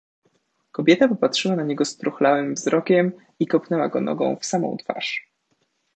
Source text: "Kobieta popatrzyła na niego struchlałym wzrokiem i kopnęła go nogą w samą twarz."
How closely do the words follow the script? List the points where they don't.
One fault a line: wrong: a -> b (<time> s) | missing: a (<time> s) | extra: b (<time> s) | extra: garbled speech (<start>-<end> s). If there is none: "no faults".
no faults